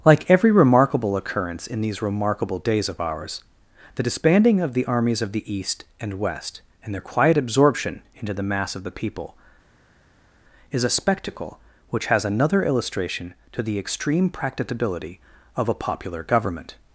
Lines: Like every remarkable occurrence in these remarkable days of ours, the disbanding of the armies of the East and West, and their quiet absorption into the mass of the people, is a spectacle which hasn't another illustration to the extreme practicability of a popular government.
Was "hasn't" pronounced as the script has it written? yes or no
no